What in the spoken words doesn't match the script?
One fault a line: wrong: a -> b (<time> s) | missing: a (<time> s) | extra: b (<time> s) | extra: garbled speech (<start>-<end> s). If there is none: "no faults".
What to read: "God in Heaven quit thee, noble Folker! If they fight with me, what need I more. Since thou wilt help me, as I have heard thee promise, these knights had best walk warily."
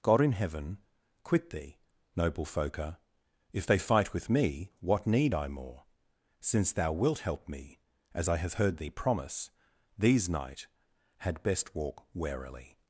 wrong: knights -> knight (10.3 s)